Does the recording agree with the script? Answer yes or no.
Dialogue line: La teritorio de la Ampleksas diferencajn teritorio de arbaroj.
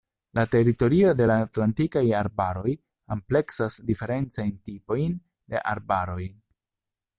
no